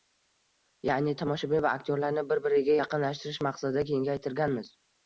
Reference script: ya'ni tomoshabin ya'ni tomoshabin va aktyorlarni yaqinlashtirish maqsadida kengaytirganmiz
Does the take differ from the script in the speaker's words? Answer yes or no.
yes